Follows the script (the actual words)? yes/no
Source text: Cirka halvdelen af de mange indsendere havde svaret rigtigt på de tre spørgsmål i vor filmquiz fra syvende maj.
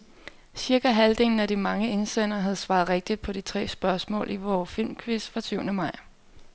yes